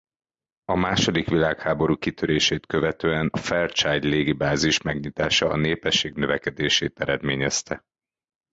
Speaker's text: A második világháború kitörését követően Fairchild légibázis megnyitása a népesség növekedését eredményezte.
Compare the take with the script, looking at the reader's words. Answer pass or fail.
pass